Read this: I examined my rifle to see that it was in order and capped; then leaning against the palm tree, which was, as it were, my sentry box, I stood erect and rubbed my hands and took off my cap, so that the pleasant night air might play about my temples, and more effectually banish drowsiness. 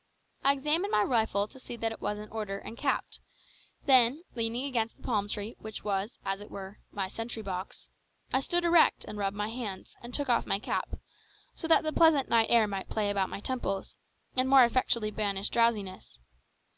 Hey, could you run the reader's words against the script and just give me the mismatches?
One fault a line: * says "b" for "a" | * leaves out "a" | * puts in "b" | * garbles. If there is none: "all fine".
all fine